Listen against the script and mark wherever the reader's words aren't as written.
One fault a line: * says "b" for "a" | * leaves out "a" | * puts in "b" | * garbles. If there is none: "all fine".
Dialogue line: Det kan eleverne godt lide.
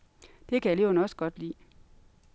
* puts in "også"